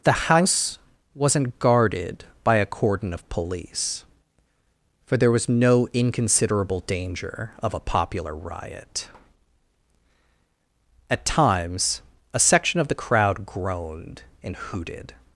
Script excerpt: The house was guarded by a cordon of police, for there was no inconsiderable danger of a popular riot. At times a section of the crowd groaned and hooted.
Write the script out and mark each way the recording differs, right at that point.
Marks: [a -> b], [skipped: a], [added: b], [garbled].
The house [was -> wasn't] guarded by a cordon of police, for there was no inconsiderable danger of a popular riot. At times a section of the crowd groaned and hooted.